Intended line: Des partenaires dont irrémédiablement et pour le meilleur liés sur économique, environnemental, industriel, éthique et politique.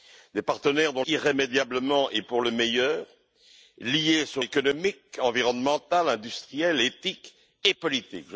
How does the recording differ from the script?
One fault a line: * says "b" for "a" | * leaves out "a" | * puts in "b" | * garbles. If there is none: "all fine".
all fine